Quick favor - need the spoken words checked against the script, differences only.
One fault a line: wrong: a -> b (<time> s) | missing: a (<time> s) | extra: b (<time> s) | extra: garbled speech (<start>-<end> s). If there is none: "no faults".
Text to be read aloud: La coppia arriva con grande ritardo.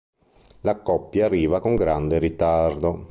no faults